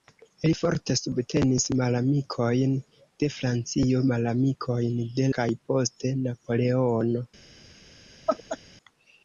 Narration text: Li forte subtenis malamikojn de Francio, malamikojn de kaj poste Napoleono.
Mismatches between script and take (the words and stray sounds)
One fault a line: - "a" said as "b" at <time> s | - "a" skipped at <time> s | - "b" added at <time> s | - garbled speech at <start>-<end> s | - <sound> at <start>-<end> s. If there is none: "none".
- laugh at 8.3-8.6 s